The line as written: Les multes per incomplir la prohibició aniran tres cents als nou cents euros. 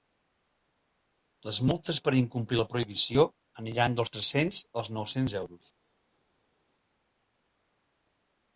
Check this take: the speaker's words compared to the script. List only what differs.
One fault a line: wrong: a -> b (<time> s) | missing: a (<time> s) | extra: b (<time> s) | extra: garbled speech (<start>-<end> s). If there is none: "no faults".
extra: dels (4.0 s)